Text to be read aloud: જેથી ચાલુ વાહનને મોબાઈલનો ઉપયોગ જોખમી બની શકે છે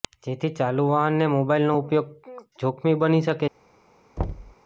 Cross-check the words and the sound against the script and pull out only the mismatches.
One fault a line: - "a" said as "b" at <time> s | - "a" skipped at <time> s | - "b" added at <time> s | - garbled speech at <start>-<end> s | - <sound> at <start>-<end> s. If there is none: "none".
- thud at 4.2-4.5 s